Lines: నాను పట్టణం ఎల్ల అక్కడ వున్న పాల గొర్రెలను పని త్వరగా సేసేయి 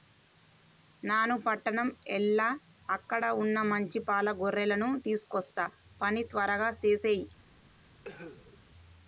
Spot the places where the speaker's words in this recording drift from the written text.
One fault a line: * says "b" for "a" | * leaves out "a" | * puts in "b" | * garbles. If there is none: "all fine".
* puts in "మంచి"
* puts in "తీసుకొస్తా"